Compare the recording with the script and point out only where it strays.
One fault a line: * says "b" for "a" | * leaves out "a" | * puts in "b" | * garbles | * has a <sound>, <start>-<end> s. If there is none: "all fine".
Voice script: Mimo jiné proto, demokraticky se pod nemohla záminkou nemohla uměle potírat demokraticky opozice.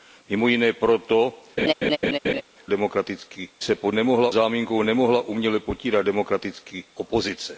* has a laugh, 1.6-2.4 s